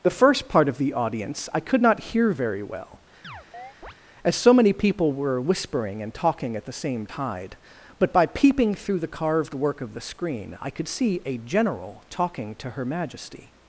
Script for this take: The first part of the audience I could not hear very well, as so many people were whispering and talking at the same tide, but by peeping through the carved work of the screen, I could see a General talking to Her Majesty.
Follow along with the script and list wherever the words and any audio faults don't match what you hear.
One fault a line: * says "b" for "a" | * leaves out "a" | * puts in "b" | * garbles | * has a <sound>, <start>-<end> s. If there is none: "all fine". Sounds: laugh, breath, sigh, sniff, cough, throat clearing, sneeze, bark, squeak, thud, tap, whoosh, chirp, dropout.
* has a chirp, 3.2-3.9 s